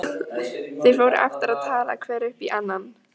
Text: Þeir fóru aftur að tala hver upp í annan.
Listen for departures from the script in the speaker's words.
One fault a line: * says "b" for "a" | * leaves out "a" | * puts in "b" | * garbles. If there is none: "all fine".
all fine